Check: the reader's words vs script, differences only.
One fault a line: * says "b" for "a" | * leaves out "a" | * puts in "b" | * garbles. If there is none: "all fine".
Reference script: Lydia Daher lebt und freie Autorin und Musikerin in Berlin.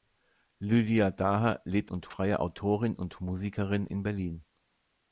all fine